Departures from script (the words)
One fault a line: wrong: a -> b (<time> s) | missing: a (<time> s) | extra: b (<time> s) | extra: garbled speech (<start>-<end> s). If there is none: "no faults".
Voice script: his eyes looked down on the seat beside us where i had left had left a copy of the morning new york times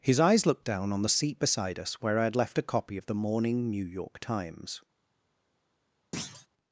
missing: had left (2.6 s)